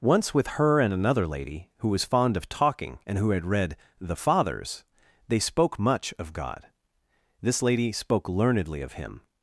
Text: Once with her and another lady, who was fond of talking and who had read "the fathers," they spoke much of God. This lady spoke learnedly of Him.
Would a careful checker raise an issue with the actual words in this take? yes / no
no